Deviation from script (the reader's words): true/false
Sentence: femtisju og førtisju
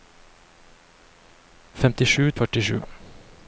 false